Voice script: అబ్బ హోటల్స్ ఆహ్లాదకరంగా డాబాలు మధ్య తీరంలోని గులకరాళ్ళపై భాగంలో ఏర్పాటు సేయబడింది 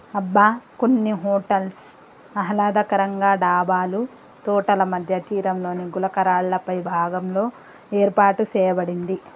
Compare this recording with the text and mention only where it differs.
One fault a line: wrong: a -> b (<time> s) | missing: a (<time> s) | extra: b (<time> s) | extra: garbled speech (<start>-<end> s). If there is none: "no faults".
extra: కొన్ని (0.8 s)
extra: తోటల (4.5 s)